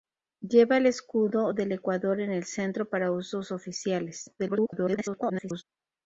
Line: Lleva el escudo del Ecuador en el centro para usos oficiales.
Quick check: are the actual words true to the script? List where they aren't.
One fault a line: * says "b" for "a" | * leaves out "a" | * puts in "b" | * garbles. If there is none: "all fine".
* garbles